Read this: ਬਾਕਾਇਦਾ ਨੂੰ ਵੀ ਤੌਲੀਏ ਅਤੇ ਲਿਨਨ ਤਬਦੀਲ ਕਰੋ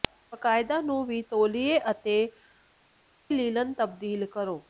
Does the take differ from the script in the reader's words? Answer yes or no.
no